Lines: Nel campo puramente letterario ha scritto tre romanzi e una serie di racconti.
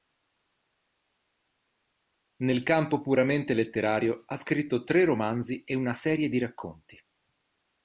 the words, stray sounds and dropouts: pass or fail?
pass